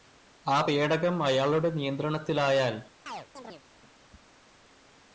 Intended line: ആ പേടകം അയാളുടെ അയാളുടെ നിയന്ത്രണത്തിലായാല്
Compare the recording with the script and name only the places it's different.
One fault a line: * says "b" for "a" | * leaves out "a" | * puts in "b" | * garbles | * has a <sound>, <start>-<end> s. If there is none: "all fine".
* leaves out "അയാളുടെ"
* has a chirp, 3.1-3.6 s